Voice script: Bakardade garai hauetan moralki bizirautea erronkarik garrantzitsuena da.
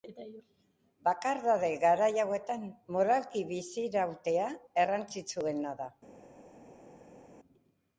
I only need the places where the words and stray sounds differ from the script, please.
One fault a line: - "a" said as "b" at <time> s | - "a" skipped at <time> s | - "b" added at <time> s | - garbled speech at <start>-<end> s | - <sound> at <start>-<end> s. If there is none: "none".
- "erronkarik" skipped at 4.5 s